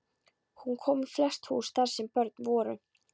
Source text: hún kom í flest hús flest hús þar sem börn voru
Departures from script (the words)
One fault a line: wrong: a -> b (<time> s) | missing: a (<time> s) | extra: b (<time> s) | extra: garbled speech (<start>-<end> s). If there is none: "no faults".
missing: flest hús (1.7 s)